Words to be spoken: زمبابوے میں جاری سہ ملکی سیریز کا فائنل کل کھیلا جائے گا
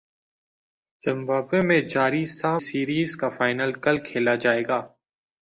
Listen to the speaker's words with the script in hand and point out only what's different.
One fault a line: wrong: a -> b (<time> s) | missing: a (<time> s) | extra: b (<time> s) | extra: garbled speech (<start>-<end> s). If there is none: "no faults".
missing: ملکی (2.5 s)